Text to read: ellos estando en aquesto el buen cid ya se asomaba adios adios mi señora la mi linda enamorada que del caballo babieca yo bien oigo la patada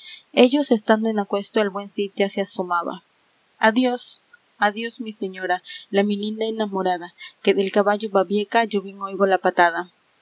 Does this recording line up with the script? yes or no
yes